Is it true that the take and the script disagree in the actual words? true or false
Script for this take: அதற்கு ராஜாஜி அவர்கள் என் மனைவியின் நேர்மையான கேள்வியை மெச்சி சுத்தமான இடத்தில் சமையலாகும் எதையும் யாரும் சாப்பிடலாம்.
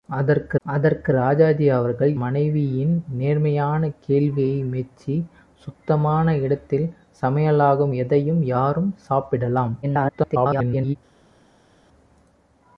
true